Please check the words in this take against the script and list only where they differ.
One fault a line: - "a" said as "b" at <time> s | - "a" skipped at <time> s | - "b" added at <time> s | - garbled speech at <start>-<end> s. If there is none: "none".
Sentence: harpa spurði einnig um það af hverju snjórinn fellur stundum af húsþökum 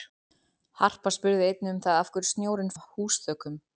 - "fellur stundum" skipped at 2.8 s